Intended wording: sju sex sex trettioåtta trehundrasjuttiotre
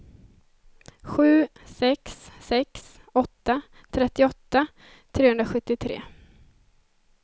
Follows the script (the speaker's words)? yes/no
no